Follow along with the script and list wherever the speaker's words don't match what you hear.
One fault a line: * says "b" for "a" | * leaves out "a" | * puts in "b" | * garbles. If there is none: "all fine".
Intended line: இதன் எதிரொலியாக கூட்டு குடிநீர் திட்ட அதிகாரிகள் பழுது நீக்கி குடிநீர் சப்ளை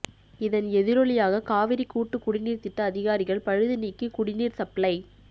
* puts in "காவிரி"